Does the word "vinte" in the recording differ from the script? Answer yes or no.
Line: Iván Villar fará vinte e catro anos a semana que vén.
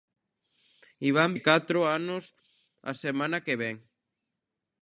yes